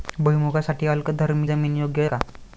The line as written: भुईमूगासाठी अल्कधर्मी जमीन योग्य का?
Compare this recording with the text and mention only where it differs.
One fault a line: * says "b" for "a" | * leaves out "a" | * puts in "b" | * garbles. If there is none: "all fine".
all fine